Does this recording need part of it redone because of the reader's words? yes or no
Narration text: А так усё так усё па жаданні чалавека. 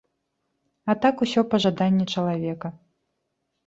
yes